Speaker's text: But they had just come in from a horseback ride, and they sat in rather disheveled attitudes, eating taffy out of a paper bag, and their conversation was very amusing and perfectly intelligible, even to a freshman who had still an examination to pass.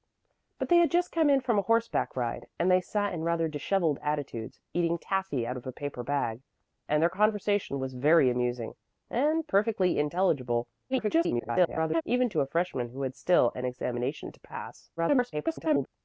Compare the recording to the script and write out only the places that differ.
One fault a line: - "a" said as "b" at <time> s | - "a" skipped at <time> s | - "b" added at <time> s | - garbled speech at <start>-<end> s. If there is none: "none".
- garbled speech at 10.9-12.0 s
- garbled speech at 15.0-15.9 s